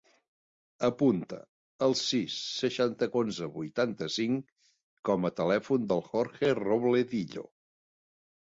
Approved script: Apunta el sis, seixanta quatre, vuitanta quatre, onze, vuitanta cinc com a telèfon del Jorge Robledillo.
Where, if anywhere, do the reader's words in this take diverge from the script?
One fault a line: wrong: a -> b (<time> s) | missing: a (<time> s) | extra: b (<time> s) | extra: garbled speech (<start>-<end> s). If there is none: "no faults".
missing: quatre vuitanta quatre (3.1 s)